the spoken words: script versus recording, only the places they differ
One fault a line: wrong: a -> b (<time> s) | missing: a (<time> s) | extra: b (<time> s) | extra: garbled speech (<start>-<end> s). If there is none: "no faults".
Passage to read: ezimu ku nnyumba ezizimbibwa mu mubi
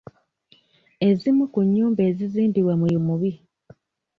no faults